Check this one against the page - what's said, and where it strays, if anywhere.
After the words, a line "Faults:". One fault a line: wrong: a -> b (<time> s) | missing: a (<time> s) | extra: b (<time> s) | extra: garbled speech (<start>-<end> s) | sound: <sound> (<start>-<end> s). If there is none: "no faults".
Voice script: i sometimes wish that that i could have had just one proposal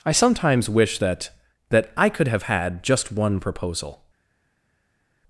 i sometimes wish that that i could have had just one proposal
Faults:
no faults